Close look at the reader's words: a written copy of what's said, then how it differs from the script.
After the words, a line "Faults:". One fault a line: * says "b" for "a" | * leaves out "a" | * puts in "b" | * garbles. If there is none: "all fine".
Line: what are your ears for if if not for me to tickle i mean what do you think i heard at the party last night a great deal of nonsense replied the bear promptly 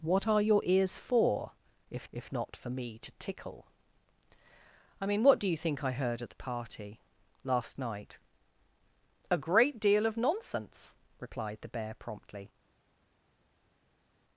what are your ears for if if not for me to tickle i mean what do you think i heard at the party last night a great deal of nonsense replied the bear promptly
Faults:
all fine